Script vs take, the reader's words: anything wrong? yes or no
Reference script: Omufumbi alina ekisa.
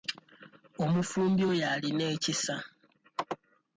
yes